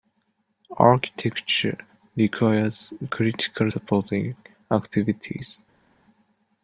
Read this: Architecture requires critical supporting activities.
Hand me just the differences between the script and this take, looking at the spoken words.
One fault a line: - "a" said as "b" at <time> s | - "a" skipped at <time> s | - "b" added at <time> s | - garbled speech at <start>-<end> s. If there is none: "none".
none